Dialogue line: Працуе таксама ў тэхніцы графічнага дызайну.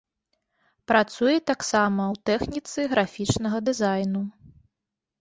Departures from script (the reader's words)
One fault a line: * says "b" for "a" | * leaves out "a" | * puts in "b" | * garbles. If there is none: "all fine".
all fine